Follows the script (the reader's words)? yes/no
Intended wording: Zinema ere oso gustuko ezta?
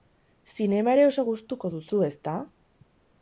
no